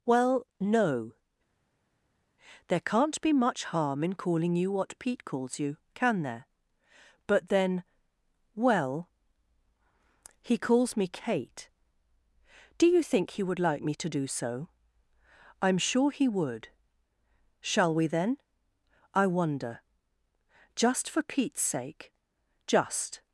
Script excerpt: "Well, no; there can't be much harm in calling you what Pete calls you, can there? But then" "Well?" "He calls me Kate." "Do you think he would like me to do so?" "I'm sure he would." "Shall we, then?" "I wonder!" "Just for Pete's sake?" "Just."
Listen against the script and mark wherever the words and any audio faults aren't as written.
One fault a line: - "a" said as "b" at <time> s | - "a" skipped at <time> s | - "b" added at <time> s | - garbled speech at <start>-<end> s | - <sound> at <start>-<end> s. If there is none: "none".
none